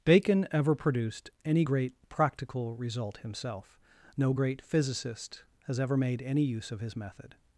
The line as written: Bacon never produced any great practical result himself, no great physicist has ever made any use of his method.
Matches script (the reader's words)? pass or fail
fail